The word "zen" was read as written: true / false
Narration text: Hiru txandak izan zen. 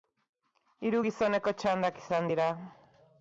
false